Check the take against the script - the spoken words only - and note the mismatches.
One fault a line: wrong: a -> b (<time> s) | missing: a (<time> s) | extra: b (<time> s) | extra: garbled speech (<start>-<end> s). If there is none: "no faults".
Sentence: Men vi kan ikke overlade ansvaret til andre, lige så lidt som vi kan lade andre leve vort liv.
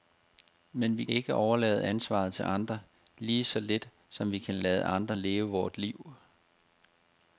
missing: kan (1.1 s)